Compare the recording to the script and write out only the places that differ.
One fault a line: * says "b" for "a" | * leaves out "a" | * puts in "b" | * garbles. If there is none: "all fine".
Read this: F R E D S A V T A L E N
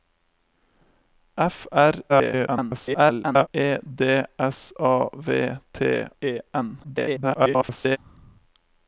* garbles
* leaves out "A L"
* garbles